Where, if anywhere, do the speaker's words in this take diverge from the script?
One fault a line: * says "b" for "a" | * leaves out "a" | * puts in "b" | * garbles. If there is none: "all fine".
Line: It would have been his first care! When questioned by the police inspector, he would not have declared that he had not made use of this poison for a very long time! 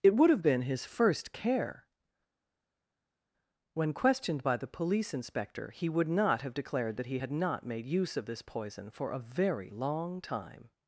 all fine